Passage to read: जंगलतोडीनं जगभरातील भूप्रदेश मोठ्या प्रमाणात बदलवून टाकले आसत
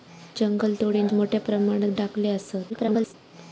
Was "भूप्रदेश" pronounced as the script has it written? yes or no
no